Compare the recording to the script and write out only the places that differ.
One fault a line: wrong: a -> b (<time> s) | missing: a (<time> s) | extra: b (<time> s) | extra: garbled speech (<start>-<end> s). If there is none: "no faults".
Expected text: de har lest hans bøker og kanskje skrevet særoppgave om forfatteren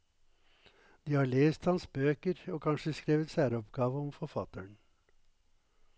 no faults